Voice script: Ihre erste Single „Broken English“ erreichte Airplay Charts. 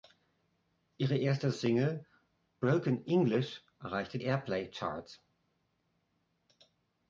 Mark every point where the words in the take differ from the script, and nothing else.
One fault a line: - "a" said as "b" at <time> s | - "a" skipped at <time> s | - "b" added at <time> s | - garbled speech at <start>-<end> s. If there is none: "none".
none